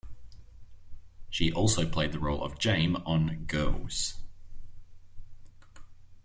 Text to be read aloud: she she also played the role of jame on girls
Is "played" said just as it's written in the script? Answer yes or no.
yes